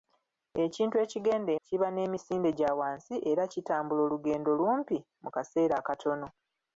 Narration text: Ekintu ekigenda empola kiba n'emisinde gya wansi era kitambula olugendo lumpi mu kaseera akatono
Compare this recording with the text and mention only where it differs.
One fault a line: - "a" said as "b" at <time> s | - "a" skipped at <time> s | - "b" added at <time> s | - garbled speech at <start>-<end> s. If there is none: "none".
- "empola" skipped at 1.5 s